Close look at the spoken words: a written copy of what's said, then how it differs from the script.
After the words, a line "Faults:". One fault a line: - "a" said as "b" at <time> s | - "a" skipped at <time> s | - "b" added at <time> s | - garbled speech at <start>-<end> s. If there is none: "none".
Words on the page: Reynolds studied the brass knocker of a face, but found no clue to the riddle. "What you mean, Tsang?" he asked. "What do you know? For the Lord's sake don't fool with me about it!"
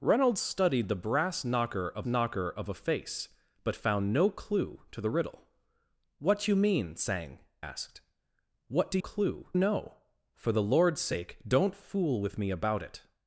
Reynolds studied the brass knocker of knocker of a face, but found no clue to the riddle. "What you mean, Tsang?" asked. "What do clue know? For the Lord's sake don't fool with me about it!"
Faults:
- "knocker of" added at 2.1 s
- "he" skipped at 7.4 s
- "you" said as "clue" at 9.0 s